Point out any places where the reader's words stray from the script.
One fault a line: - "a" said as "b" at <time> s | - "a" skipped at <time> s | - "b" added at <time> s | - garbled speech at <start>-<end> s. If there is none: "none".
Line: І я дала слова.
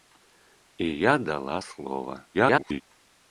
- garbled speech at 2.3-2.8 s